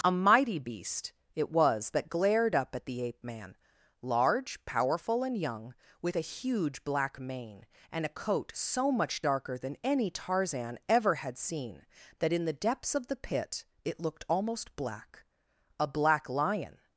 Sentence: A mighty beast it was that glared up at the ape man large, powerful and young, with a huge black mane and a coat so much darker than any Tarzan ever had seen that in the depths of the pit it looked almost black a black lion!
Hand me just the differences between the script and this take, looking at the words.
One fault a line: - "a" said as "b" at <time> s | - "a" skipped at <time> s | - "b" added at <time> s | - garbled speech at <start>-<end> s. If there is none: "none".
none